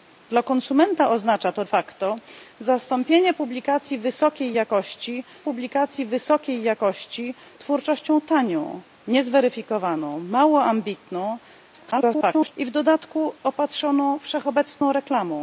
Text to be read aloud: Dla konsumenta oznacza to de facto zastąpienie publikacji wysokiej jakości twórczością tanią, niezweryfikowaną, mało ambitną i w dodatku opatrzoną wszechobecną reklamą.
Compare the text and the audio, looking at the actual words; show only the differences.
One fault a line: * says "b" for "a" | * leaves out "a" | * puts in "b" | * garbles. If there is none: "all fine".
* leaves out "de"
* puts in "publikacji wysokiej jakości"
* garbles